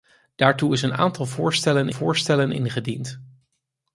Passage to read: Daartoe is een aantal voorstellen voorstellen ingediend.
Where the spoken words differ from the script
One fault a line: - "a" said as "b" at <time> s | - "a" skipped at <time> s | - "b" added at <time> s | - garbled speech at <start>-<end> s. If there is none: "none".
none